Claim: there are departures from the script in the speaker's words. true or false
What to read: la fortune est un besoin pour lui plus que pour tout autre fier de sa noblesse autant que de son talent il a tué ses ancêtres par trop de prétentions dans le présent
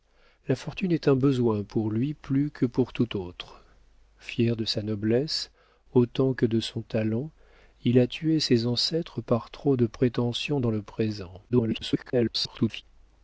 true